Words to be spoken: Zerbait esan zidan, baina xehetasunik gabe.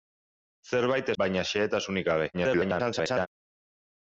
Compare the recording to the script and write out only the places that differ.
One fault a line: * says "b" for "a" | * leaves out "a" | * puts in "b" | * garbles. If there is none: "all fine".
* leaves out "esan zidan"
* garbles